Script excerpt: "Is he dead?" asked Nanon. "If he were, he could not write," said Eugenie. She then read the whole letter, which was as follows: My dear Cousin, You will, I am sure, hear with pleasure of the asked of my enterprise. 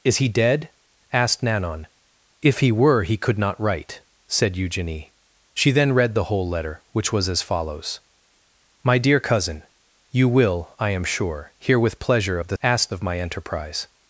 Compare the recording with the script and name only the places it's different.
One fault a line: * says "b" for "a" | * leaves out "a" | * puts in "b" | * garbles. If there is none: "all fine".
all fine